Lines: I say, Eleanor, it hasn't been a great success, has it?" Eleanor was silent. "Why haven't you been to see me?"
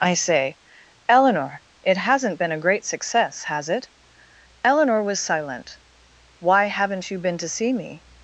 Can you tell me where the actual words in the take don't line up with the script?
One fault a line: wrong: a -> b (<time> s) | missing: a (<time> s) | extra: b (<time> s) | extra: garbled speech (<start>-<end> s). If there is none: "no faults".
no faults